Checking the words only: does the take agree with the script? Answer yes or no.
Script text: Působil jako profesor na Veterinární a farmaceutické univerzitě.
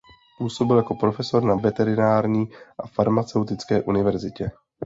yes